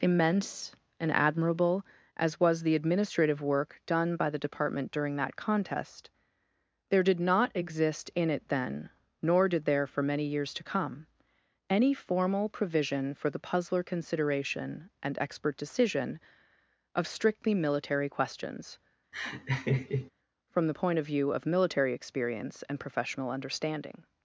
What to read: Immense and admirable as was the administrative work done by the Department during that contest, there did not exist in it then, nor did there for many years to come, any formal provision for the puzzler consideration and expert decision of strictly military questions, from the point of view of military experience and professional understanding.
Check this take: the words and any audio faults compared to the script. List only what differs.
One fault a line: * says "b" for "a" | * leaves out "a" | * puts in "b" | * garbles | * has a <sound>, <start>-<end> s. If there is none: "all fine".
* has a laugh, 19.1-20.1 s